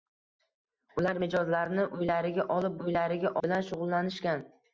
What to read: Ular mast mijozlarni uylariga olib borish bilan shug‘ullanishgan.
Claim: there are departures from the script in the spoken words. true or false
true